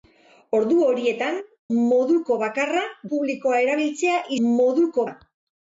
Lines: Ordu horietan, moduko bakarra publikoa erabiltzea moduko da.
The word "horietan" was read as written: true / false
true